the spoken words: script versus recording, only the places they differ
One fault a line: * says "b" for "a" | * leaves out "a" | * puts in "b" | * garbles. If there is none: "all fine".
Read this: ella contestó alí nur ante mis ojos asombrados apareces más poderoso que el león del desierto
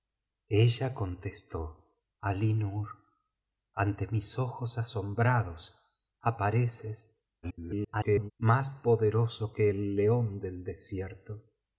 * garbles